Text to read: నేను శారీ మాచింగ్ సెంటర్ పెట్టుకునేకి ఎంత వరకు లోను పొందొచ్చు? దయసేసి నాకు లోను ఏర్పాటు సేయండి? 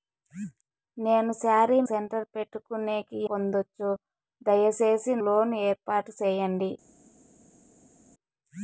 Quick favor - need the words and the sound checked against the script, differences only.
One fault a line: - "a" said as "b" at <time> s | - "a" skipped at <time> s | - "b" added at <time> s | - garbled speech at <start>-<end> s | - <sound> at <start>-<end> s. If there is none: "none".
- "మాచింగ్" skipped at 1.8 s
- "ఎంత వరకు లోను" skipped at 3.2 s
- "నాకు" skipped at 5.1 s